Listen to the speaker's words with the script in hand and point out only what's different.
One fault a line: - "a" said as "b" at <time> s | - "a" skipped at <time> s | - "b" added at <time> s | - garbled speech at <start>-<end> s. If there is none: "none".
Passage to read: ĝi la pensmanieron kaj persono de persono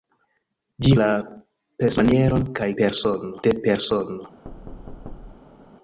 none